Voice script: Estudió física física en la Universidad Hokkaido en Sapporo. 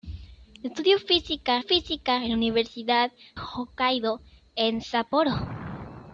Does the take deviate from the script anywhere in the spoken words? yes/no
no